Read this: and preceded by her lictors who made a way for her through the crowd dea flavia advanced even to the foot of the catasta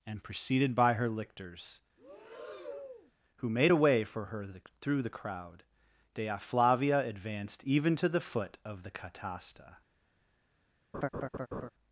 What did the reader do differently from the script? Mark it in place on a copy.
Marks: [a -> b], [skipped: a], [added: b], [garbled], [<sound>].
and preceded by her lictors [breath] who made a way for her [added: the] through the crowd dea flavia advanced even to the foot of the catasta [laugh]